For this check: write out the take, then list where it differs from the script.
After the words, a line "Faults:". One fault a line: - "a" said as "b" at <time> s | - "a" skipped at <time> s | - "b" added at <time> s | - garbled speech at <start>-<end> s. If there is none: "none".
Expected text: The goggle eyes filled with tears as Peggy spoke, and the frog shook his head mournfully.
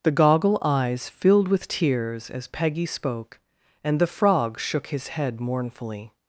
The goggle eyes filled with tears as Peggy spoke, and the frog shook his head mournfully.
Faults:
none